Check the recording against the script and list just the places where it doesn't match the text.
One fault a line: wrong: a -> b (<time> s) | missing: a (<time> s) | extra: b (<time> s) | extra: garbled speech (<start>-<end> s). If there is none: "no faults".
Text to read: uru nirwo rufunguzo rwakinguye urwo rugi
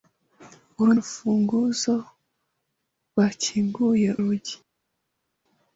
missing: nirwo (0.9 s)
missing: urwo (4.1 s)